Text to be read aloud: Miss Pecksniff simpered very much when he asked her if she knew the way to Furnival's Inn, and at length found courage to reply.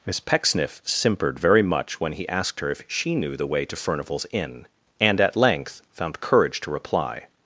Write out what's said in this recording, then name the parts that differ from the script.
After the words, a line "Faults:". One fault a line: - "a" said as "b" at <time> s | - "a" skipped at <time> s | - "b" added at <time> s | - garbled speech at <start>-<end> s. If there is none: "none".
Miss Pecksniff simpered very much when he asked her if she knew the way to Furnival's Inn, and at length found courage to reply.
Faults:
none